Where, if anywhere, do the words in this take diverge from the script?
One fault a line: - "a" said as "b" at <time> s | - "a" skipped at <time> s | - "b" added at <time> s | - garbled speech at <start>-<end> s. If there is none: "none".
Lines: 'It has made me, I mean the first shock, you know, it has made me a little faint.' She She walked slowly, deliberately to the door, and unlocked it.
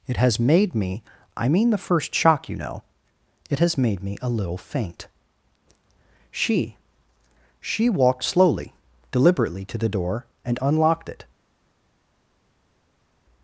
none